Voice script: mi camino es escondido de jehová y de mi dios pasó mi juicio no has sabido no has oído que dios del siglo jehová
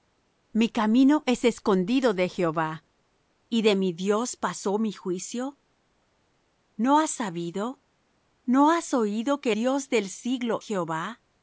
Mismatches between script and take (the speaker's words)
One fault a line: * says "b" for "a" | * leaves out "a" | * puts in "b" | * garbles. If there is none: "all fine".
all fine